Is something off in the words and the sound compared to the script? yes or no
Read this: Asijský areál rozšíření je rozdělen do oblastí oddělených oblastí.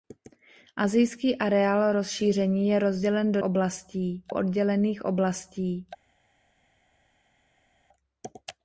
no